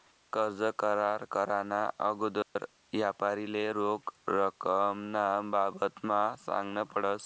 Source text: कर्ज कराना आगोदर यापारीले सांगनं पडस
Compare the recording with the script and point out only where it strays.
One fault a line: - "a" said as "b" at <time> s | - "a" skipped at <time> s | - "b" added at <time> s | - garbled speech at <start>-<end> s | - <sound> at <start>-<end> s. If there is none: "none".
- "करार" added at 0.8 s
- dropout at 2.4-2.6 s
- "रोख रकमना बाबतमा" added at 3.7 s